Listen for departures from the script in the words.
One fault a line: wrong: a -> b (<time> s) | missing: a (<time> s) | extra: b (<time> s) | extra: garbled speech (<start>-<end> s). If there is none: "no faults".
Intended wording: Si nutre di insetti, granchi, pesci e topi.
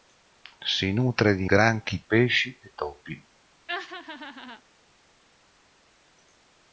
missing: insetti (1.4 s)